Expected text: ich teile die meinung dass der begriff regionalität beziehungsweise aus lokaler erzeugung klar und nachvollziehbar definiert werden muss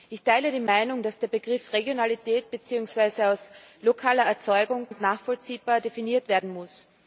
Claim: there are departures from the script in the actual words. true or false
true